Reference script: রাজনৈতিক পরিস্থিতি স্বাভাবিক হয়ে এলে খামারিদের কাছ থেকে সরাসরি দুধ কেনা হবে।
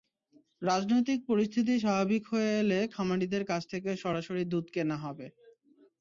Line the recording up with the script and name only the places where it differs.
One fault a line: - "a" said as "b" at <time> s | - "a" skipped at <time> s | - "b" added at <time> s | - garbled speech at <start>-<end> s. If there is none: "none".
none